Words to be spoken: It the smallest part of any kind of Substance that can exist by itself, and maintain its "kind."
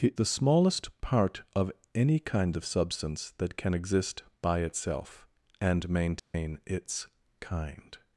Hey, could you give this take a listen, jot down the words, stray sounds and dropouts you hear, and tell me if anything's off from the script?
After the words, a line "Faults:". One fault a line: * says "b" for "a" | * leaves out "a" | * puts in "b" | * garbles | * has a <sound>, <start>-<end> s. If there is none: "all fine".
It the smallest part of any kind of Substance that can exist by itself, and maintain its "kind."
Faults:
* has a dropout, 6.2-6.3 s